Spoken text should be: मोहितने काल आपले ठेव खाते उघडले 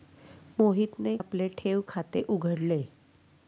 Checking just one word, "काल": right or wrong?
wrong